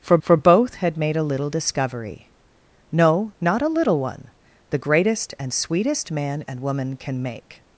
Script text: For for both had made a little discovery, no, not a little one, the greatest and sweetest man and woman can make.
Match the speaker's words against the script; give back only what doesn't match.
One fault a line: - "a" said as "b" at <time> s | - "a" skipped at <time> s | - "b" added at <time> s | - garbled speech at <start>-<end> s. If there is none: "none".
none